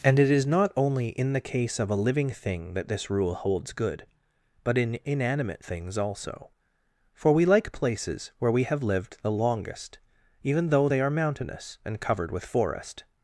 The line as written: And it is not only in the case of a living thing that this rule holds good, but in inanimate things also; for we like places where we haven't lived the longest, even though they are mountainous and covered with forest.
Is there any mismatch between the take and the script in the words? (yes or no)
yes